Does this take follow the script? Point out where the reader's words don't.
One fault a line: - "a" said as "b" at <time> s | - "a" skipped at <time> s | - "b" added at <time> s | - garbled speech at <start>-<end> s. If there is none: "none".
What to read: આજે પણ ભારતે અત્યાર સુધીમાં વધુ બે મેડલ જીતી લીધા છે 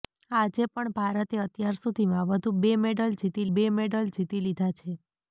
- "બે મેડલ જીતી" added at 3.5 s